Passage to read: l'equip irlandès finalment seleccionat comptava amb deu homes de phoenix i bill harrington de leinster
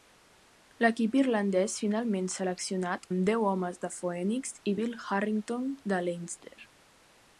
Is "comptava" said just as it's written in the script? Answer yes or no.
no